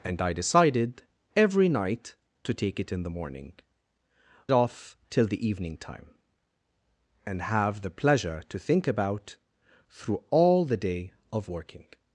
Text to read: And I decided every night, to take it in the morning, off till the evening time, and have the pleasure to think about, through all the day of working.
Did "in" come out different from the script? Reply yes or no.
no